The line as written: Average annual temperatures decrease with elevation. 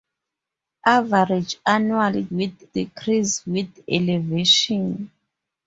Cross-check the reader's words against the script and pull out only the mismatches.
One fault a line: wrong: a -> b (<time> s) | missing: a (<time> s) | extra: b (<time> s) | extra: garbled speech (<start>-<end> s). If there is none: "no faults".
wrong: temperatures -> with (2.3 s)